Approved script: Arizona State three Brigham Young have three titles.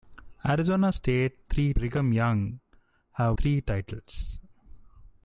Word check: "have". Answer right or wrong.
right